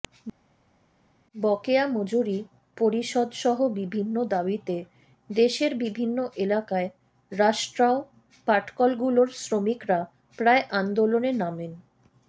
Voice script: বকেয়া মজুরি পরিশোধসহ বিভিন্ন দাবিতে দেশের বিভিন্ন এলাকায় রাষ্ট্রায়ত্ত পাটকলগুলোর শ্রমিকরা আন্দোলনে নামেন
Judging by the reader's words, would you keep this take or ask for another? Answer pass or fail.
fail